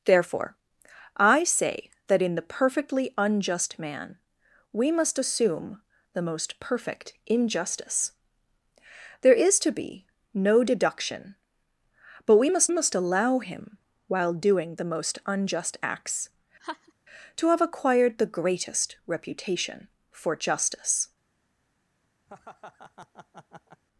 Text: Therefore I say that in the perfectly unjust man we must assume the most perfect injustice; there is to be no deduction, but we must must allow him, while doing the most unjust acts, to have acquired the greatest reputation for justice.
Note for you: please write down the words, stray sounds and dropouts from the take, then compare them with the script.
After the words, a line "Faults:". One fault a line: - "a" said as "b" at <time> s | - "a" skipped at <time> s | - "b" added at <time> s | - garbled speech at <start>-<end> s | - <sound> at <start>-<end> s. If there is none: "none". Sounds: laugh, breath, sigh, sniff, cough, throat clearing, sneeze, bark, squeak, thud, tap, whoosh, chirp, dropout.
Therefore I say that in the perfectly unjust man we must assume the most perfect injustice; there is to be no deduction, but we must must allow him, while doing the most unjust acts, to have acquired the greatest reputation for justice.
Faults:
- laugh at 16.6-16.9 s
- laugh at 22.3-23.8 s